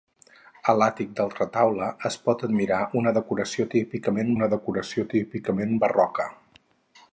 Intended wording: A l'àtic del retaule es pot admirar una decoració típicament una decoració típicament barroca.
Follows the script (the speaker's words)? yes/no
yes